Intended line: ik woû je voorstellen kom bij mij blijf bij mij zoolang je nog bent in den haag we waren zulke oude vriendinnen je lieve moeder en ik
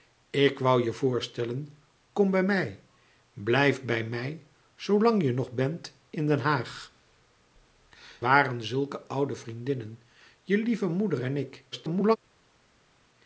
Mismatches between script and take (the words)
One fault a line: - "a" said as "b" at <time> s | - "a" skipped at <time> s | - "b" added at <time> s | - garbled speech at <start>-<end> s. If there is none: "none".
- "we" skipped at 6.9 s
- garbled speech at 11.7-12.2 s